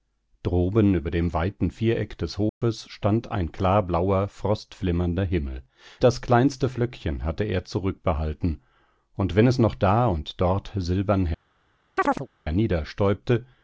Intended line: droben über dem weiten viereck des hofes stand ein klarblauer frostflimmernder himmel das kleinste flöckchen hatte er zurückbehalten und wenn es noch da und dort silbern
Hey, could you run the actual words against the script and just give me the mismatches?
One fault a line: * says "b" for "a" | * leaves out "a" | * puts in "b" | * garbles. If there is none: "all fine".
all fine